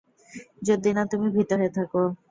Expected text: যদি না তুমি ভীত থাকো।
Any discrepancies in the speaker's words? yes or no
yes